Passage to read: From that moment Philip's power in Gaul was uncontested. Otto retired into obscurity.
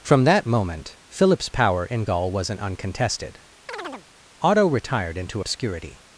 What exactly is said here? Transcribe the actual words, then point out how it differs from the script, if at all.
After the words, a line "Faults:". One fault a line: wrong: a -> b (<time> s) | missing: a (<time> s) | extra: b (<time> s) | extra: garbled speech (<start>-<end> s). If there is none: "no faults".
From that moment Philip's power in Gaul wasn't uncontested. Otto retired into obscurity.
Faults:
wrong: was -> wasn't (2.3 s)